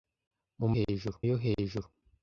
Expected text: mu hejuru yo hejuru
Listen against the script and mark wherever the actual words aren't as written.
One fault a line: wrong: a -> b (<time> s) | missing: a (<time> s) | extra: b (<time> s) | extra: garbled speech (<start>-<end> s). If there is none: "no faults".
no faults